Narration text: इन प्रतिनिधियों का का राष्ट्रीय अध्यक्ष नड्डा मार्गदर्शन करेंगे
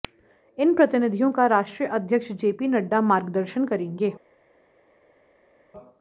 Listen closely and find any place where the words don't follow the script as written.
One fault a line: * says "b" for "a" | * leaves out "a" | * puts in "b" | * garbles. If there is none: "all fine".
* leaves out "का"
* puts in "जेपी"